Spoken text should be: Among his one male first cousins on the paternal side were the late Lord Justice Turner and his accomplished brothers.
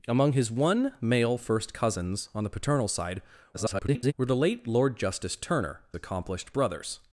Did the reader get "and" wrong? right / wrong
wrong